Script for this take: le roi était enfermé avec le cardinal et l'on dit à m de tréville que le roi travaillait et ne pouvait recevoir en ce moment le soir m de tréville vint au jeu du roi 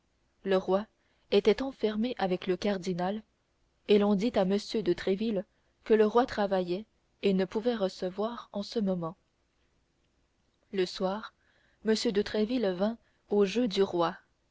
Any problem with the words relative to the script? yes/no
no